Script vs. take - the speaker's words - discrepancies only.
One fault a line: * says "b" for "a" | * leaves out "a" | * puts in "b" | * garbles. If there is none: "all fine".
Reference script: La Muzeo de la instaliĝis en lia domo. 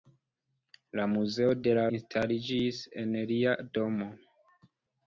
all fine